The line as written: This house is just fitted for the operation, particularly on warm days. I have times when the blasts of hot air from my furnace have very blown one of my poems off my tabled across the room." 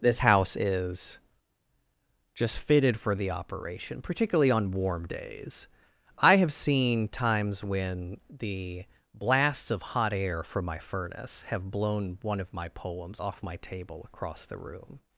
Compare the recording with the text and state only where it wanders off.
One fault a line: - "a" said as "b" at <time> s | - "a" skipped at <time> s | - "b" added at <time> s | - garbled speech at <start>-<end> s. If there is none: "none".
- "seen" added at 6.5 s
- "very" skipped at 11.7 s
- "tabled" said as "table" at 13.6 s